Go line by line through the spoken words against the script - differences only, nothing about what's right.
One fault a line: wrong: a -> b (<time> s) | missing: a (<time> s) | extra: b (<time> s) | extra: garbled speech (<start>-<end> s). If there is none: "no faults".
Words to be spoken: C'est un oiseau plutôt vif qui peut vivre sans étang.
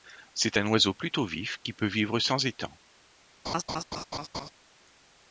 no faults